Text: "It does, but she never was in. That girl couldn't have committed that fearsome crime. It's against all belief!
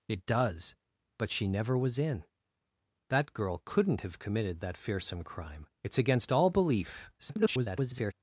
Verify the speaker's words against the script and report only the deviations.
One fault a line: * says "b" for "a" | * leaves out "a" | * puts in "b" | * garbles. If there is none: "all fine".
* garbles